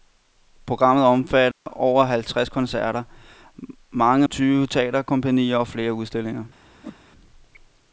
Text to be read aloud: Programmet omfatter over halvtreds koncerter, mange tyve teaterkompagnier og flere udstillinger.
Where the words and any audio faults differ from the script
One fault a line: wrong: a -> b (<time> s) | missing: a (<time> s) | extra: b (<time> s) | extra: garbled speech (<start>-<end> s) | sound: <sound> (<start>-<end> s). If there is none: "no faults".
sound: dropout (1.5-1.7 s)
sound: whoosh (6.8-7.0 s)